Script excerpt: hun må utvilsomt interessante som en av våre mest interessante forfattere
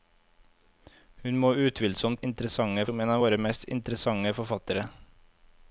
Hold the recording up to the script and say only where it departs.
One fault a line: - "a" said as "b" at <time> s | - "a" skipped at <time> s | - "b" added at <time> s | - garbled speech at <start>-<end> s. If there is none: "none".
none